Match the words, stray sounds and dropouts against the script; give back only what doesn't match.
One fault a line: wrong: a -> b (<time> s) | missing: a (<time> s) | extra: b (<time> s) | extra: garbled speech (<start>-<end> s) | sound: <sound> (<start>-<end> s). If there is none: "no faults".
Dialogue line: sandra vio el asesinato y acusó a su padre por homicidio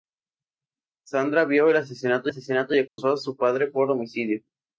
extra: asesinato (2.2 s)
sound: dropout (2.9-3.0 s)